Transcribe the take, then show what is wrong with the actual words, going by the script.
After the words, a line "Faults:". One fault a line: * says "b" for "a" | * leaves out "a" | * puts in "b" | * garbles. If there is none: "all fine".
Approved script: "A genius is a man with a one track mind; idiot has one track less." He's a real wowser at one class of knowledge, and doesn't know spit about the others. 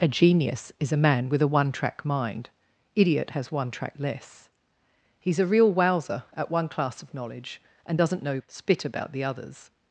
"A genius is a man with a one track mind; idiot has one track less." He's a real wowser at one class of knowledge, and doesn't know spit about the others.
Faults:
all fine